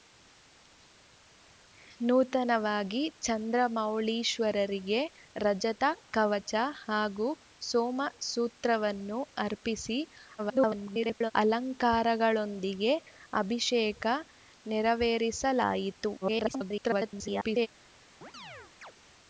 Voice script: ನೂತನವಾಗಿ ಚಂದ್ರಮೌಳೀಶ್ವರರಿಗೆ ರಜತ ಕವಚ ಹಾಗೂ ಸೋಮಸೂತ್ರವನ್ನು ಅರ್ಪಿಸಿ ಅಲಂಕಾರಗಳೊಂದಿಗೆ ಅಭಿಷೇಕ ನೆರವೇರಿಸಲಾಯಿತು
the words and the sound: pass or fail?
fail